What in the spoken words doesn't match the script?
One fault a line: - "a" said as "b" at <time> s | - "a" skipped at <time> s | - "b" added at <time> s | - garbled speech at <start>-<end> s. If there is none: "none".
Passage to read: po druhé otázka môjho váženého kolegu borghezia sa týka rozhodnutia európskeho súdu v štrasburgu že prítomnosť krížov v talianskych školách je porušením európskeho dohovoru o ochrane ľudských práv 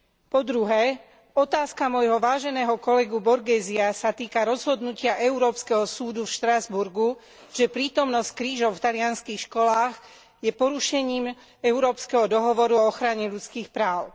none